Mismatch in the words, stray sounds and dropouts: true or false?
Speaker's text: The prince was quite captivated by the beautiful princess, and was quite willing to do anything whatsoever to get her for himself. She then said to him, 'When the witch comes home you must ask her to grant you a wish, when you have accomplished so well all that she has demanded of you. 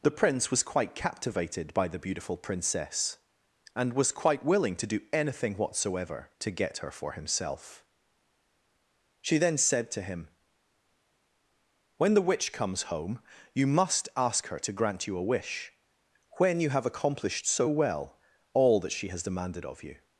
false